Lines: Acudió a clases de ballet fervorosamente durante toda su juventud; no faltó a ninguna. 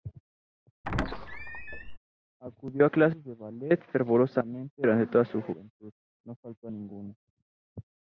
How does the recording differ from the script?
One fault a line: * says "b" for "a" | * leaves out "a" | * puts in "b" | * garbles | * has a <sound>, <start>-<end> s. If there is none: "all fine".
* has a squeak, 0.8-2.0 s